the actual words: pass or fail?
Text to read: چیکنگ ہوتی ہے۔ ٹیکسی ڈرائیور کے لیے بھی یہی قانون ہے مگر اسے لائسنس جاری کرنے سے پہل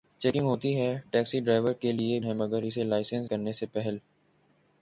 fail